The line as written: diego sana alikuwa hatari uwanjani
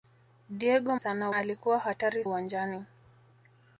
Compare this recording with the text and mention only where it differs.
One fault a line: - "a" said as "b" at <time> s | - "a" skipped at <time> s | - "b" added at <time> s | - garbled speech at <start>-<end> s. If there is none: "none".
none